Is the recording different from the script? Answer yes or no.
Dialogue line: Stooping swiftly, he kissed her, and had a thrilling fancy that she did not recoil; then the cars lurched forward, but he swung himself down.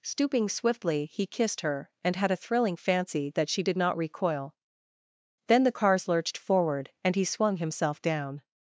yes